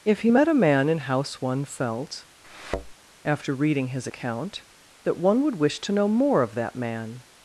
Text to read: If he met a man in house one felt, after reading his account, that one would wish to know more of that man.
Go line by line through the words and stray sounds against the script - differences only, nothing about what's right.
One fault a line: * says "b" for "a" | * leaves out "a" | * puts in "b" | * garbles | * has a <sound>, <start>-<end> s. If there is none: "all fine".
* has a thud, 2.4-2.9 s